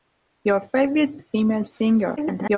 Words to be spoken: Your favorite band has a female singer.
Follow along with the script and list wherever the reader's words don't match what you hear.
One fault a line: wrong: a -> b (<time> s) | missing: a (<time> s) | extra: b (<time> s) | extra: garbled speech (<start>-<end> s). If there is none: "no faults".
missing: band has (1.2 s)
extra: garbled speech (2.2-2.6 s)